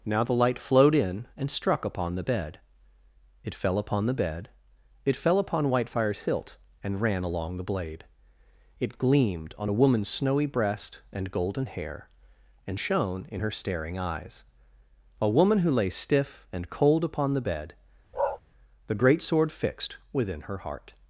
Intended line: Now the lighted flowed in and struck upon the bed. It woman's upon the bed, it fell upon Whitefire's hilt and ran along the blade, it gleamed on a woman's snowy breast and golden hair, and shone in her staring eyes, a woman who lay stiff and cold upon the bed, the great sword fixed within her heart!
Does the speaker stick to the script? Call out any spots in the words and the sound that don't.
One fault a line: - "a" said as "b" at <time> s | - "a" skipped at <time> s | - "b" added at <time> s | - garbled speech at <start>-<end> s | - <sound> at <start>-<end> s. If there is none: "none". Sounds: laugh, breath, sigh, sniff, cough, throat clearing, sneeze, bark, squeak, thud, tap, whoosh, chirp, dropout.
- "lighted" said as "light" at 0.3 s
- "woman's" said as "fell" at 3.5 s
- bark at 18.1-18.4 s